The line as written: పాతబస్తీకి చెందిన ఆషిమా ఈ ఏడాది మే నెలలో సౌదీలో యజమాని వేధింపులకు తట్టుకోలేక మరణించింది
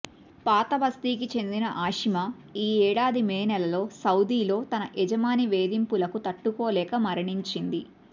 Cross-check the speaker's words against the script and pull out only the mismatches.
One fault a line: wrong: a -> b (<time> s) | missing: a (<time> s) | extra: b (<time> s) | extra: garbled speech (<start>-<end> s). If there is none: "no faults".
extra: తన (4.7 s)